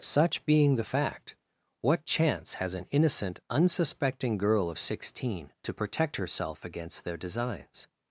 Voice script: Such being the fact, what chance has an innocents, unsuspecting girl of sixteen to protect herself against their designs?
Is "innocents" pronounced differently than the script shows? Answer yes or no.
yes